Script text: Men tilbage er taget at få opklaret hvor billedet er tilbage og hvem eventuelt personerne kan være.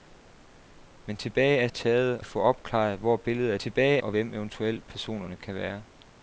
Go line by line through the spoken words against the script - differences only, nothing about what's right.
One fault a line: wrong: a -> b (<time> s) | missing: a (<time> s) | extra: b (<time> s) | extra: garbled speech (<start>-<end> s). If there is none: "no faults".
no faults